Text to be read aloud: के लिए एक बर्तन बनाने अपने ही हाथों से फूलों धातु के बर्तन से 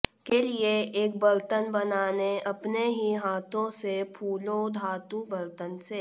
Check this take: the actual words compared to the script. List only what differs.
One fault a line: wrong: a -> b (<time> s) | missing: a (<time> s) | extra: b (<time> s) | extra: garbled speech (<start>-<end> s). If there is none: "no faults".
missing: के (5.2 s)